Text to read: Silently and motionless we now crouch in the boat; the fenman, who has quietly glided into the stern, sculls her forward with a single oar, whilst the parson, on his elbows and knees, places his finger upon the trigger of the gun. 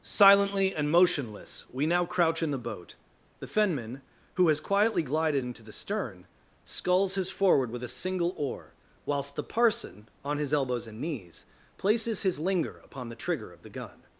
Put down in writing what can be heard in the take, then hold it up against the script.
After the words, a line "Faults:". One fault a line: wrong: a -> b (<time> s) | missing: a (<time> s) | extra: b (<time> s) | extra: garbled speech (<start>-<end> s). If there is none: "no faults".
Silently and motionless we now crouch in the boat; the fenman, who has quietly glided into the stern, sculls his forward with a single oar, whilst the parson, on his elbows and knees, places his linger upon the trigger of the gun.
Faults:
wrong: her -> his (7.2 s)
wrong: finger -> linger (12.4 s)